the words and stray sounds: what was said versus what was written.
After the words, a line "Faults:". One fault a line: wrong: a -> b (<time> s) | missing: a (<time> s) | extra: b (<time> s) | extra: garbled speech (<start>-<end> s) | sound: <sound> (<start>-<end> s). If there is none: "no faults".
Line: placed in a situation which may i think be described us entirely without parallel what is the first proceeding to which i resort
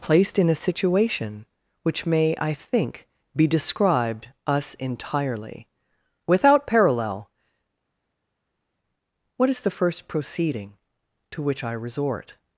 placed in a situation which may i think be described us entirely without parallel what is the first proceeding to which i resort
Faults:
no faults